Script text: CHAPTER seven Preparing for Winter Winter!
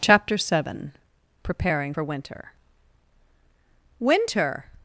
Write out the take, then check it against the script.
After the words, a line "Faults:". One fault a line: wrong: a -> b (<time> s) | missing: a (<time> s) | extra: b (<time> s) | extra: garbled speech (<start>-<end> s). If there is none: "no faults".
CHAPTER seven Preparing for Winter Winter!
Faults:
no faults